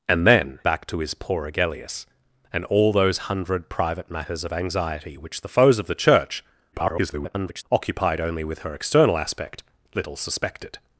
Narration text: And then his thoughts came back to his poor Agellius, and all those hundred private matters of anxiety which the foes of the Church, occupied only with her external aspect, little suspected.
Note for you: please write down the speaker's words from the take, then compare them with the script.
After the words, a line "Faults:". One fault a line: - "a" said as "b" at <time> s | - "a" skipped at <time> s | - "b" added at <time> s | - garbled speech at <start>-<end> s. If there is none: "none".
And then back to his poor Agellius, and all those hundred private matters of anxiety which the foes of the Church, [garbled] occupied only with her external aspect, little suspected.
Faults:
- "his thoughts came" skipped at 0.6 s
- garbled speech at 6.7-7.6 s